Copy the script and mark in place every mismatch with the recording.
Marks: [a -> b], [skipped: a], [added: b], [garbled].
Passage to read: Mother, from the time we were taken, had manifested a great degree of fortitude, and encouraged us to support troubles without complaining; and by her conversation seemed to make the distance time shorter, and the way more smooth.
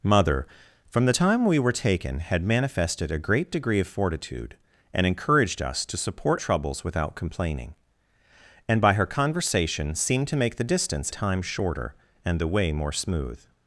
Mother, from the time we were taken, had manifested a great degree of fortitude, and encouraged us to support troubles without complaining; and by her conversation seemed to make the distance time shorter, and the way more smooth.